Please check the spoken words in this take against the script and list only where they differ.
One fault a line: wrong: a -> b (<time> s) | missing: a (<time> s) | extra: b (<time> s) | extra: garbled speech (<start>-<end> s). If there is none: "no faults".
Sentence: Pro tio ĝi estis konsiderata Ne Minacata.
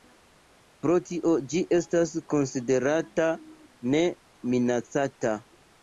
wrong: estis -> estas (1.8 s)